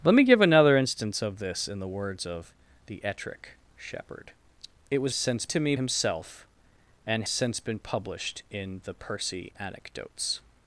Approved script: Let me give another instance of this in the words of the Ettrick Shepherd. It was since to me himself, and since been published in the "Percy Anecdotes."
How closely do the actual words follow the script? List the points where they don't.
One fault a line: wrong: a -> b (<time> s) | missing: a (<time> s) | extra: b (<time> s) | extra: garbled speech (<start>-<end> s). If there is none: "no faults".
no faults